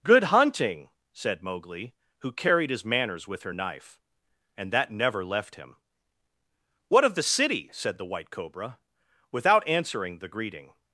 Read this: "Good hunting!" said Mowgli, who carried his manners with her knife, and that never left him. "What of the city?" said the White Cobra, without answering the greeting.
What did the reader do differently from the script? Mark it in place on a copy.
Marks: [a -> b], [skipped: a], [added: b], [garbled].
"Good hunting!" said Mowgli, who carried his manners with her knife, and that never left him. "What of the city?" said the White Cobra, without answering the greeting.